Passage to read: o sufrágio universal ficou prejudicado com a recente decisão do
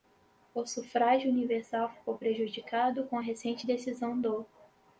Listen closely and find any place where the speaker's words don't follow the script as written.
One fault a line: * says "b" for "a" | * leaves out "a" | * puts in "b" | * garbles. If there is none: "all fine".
all fine